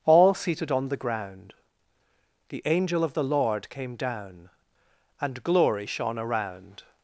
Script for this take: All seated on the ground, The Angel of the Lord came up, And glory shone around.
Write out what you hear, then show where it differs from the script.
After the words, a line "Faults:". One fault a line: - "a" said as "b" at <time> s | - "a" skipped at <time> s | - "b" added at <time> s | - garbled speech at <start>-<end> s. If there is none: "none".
All seated on the ground, The Angel of the Lord came down, And glory shone around.
Faults:
- "up" said as "down" at 4.0 s